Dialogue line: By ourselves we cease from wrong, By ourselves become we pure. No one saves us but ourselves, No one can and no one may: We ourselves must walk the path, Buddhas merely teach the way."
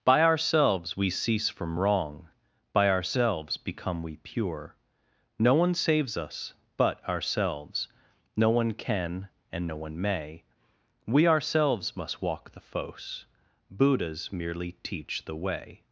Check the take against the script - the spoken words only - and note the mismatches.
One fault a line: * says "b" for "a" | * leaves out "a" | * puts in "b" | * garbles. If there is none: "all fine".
* says "fos" for "path"